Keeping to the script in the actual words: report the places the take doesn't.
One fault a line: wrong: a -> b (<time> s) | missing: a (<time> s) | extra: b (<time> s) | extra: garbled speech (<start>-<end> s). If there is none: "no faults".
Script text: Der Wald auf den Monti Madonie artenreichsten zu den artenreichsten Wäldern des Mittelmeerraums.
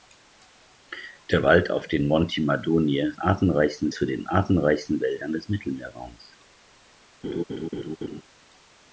no faults